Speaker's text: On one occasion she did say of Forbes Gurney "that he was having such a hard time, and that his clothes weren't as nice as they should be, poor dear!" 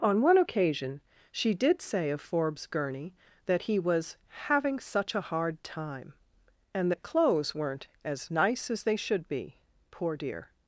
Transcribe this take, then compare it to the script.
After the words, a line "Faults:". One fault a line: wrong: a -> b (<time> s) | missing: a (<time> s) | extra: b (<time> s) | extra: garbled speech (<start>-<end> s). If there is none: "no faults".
On one occasion she did say of Forbes Gurney "that he was having such a hard time, and that clothes weren't as nice as they should be, poor dear!"
Faults:
missing: his (7.0 s)